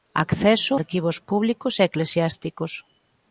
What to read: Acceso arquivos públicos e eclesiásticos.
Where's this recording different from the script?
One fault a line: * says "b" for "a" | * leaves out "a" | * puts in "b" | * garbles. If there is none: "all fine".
all fine